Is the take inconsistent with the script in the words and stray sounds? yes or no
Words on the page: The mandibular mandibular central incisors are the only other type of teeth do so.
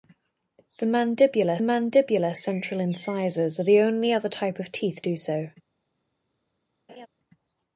yes